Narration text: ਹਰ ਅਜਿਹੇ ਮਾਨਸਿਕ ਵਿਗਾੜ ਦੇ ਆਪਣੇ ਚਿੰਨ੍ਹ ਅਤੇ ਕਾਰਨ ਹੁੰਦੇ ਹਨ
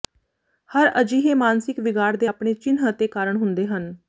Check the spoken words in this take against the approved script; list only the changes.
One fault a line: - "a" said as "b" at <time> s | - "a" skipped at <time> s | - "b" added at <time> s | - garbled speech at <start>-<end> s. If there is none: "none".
none